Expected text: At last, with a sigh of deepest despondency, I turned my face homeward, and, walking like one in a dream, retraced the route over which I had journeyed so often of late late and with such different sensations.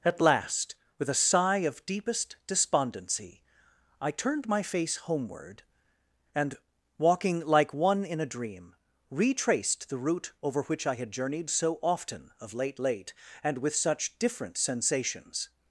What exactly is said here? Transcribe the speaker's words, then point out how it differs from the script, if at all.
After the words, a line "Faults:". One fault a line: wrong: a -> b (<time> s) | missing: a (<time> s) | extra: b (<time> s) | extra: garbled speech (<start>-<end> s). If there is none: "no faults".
At last, with a sigh of deepest despondency, I turned my face homeward, and, walking like one in a dream, retraced the route over which I had journeyed so often of late late and with such different sensations.
Faults:
no faults